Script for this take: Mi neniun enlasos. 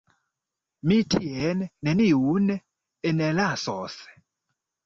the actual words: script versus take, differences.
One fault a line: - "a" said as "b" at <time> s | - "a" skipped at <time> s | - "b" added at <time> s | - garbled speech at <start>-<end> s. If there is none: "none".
- "tien" added at 1.1 s